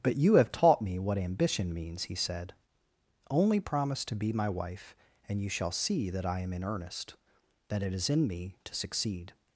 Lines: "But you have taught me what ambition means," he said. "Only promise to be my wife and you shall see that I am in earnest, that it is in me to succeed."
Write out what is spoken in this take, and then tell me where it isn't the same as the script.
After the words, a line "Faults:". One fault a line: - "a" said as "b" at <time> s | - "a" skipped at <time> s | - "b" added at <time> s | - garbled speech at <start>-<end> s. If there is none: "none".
"But you have taught me what ambition means," he said. "Only promise to be my wife and you shall see that I am in earnest, that it is in me to succeed."
Faults:
none